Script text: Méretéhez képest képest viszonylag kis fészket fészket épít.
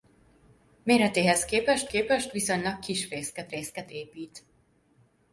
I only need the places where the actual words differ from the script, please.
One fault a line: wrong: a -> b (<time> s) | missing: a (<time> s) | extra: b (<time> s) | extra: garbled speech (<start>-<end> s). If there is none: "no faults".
no faults